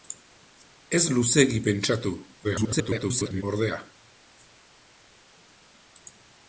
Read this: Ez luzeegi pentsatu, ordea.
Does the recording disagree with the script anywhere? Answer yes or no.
yes